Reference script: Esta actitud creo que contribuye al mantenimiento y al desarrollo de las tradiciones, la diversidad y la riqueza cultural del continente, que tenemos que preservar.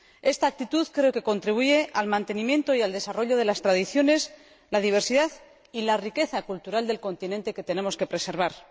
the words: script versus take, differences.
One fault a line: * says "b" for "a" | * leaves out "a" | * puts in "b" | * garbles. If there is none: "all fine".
all fine